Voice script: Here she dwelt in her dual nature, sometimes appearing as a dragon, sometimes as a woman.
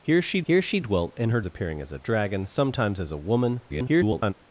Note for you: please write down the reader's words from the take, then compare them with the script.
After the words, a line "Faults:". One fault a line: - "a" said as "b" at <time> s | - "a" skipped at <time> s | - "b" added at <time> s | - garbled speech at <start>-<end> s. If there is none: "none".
Here she here she dwelt in her appearing as a dragon, sometimes as a woman. [garbled]
Faults:
- "here she" added at 0.4 s
- "dual nature sometimes" skipped at 1.4 s
- garbled speech at 3.7-4.3 s